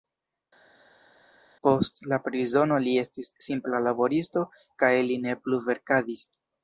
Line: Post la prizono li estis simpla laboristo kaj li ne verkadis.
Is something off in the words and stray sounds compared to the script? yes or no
yes